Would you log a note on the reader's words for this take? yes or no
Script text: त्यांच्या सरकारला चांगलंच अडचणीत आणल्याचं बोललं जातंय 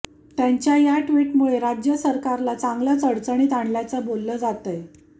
yes